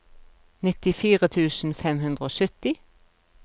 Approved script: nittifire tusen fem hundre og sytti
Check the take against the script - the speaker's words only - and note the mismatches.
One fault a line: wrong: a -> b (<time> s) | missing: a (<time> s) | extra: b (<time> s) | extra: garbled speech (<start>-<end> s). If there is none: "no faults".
no faults